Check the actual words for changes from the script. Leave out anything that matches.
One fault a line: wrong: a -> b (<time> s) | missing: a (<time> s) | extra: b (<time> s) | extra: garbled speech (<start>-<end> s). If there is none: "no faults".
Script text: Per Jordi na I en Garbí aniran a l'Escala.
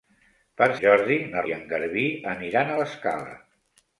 no faults